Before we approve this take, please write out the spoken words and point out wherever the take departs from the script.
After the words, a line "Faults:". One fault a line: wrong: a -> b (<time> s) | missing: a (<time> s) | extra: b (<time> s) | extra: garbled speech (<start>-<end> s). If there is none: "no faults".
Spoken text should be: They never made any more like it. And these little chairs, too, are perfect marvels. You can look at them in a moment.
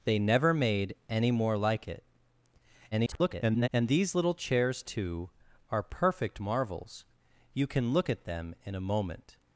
They never made any more like it. [garbled] And these little chairs, too, are perfect marvels. You can look at them in a moment.
Faults:
extra: garbled speech (2.9-3.7 s)